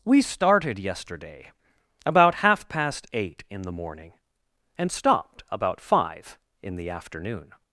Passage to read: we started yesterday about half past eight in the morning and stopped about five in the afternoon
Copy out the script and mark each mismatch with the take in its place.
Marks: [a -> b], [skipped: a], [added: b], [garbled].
we started yesterday about half past eight in the morning and stopped about five in the afternoon